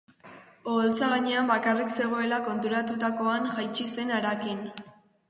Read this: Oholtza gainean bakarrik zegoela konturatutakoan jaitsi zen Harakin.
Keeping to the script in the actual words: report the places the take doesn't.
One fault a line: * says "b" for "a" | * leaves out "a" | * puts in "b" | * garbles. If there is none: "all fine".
all fine